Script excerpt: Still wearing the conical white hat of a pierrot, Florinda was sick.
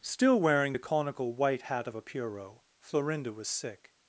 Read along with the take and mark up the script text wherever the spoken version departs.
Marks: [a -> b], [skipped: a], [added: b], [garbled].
Still wearing the conical white hat of a pierrot, Florinda was sick.